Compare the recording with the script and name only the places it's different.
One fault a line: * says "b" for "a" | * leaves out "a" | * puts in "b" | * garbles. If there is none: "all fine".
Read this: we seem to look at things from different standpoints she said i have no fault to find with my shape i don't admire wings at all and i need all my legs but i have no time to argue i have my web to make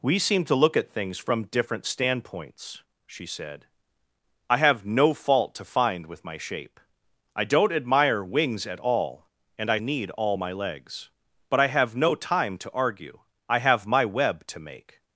all fine